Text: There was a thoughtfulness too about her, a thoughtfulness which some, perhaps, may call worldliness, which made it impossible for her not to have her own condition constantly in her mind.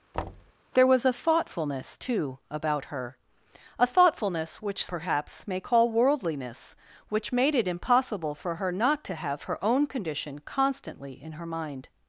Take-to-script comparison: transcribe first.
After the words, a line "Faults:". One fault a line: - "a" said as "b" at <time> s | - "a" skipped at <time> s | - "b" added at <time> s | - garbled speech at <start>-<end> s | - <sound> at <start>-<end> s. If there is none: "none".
There was a thoughtfulness too about her, a thoughtfulness which perhaps, may call worldliness, which made it impossible for her not to have her own condition constantly in her mind.
Faults:
- thud at 0.1-0.5 s
- "some" skipped at 4.9 s